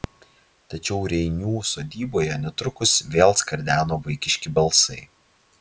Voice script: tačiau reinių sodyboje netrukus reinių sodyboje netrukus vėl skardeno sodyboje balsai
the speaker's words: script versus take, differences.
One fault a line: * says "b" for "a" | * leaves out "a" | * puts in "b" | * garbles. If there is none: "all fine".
* leaves out "reinių sodyboje netrukus"
* says "vaikiški" for "sodyboje"